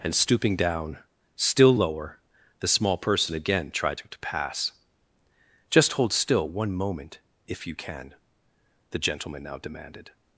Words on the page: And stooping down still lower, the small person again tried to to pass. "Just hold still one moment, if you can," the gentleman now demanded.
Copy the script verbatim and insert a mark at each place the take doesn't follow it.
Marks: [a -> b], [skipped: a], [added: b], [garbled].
And stooping down still lower, the small person again tried to to pass. "Just hold still one moment, if you can," the gentleman now demanded.